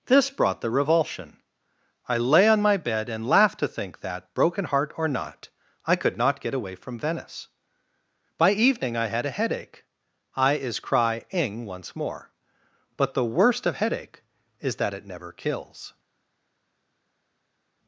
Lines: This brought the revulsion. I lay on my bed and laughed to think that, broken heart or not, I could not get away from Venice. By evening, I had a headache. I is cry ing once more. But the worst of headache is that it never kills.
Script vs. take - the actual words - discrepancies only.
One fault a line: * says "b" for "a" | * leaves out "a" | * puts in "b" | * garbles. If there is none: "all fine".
all fine